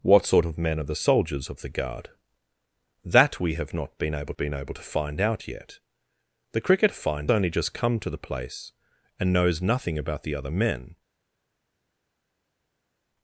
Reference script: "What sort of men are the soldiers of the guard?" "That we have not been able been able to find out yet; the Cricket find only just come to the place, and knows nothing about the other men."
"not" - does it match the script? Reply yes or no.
yes